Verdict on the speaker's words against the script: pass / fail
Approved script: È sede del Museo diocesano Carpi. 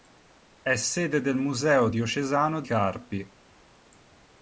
pass